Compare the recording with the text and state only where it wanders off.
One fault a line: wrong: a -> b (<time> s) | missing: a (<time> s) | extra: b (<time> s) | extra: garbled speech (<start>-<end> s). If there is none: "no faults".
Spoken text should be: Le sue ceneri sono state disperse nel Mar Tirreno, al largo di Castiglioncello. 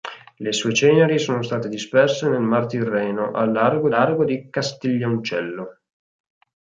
extra: largo (3.9 s)